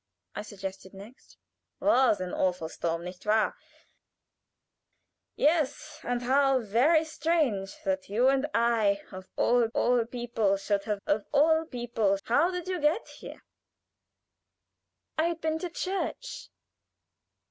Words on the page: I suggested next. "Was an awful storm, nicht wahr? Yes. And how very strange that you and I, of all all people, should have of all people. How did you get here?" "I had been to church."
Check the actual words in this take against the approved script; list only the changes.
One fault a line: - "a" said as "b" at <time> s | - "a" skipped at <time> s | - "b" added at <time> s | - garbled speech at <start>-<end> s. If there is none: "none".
none